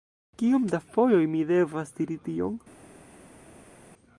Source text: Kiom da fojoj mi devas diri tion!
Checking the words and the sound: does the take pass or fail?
pass